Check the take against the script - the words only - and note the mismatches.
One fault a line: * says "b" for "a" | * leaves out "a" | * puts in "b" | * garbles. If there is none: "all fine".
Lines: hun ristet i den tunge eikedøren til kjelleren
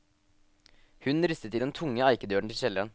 all fine